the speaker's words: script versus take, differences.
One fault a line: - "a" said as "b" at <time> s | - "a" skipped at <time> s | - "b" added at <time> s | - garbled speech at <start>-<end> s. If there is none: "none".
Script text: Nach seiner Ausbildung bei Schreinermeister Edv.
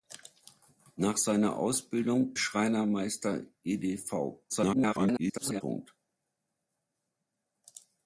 - "bei" skipped at 2.3 s
- garbled speech at 4.5-5.6 s